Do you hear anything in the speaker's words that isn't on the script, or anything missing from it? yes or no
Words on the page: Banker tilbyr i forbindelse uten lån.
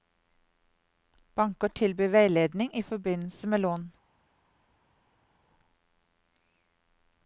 yes